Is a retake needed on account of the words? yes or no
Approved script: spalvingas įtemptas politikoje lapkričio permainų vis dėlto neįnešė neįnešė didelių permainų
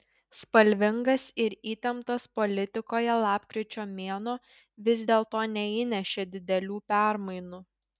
yes